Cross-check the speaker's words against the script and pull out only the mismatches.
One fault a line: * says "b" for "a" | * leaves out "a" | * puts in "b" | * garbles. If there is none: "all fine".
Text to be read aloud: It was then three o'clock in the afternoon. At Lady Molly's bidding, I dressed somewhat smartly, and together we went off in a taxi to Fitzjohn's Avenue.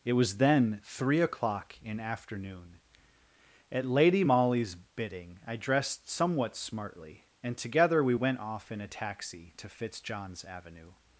* leaves out "the"